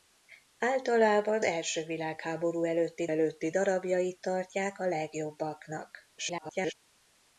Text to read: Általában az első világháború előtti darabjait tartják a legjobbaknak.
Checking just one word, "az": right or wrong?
wrong